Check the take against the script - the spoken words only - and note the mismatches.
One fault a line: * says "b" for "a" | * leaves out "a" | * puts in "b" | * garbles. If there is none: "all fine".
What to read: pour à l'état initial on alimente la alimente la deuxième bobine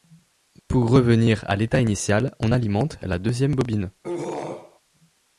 * puts in "revenir"
* leaves out "alimente la"